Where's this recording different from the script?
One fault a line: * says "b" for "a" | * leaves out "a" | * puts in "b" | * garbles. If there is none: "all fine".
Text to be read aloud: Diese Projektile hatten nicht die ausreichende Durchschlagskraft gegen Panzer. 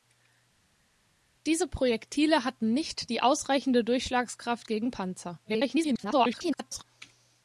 * garbles